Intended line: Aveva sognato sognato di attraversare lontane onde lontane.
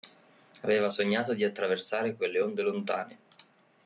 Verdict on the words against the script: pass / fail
fail